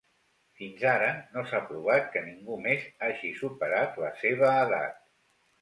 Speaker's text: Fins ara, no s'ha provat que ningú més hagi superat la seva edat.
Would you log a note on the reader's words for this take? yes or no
no